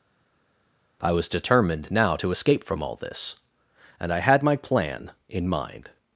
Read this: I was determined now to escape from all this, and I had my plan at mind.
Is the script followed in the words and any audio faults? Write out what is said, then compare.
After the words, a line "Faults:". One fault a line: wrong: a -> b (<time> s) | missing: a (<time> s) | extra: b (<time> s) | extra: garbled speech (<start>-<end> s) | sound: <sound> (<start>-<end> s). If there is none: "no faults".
I was determined now to escape from all this, and I had my plan in mind.
Faults:
wrong: at -> in (5.3 s)